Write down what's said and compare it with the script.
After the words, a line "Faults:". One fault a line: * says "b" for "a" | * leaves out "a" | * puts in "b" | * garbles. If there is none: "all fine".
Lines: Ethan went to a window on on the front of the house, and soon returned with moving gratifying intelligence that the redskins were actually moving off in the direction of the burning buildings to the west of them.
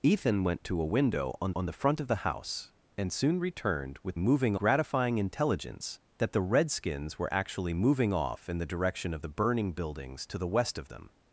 Ethan went to a window on on the front of the house, and soon returned with moving gratifying intelligence that the redskins were actually moving off in the direction of the burning buildings to the west of them.
Faults:
all fine